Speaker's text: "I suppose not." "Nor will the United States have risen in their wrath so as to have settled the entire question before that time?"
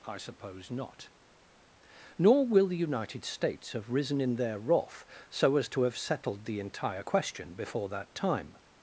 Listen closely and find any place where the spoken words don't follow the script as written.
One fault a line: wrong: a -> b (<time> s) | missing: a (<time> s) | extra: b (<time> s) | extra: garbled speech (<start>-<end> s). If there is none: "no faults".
no faults